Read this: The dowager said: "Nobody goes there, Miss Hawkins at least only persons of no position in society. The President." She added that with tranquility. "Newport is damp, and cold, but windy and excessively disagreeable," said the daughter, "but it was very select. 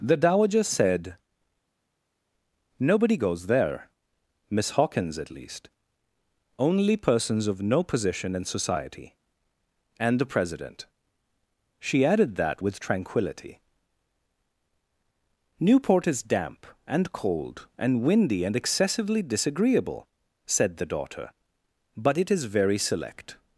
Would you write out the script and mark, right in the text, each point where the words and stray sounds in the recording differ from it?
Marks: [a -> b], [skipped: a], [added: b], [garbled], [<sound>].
The dowager said: "Nobody goes there, Miss Hawkins at least only persons of no position in society. [added: And] The President." She added that with tranquility. "Newport is damp, and cold, [but -> and] windy and excessively disagreeable," said the daughter, "but it [was -> is] very select.